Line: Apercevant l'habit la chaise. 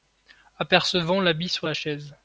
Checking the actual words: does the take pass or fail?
fail